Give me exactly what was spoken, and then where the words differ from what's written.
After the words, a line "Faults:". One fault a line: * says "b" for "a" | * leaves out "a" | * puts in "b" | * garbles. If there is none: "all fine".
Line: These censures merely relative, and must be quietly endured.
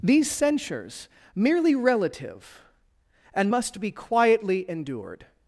These censures merely relative, and must be quietly endured.
Faults:
all fine